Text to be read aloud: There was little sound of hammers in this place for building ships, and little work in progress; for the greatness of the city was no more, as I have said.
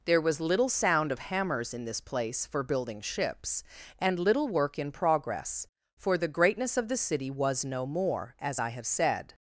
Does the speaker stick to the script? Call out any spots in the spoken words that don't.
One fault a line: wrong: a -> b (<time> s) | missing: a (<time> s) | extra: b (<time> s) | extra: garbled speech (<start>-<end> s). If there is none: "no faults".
no faults